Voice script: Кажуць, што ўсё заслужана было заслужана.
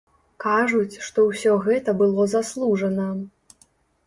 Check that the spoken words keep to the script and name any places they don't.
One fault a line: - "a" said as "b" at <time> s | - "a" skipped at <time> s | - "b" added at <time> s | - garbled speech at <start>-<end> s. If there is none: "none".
- "заслужана" said as "гэта" at 1.7 s